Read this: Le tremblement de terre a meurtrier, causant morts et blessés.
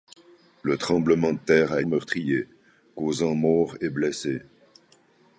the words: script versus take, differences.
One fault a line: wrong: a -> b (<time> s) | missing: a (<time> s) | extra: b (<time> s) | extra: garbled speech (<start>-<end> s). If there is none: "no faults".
no faults